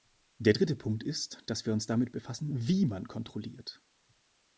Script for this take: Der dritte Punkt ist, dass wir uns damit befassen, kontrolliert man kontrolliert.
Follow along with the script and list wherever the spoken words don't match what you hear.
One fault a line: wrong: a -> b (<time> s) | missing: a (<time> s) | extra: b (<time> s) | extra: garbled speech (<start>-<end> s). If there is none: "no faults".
wrong: kontrolliert -> wie (2.5 s)